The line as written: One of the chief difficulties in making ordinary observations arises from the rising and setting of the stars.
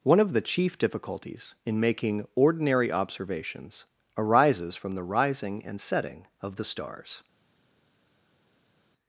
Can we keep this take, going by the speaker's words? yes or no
yes